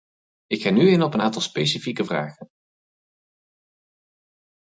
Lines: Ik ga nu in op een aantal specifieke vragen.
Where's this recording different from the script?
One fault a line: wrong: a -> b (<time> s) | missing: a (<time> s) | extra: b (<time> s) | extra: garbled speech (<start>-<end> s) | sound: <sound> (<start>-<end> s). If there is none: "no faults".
no faults